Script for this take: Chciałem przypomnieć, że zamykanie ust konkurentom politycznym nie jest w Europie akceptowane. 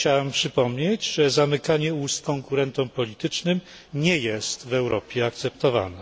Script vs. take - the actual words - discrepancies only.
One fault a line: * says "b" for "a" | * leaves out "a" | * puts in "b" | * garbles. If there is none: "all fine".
all fine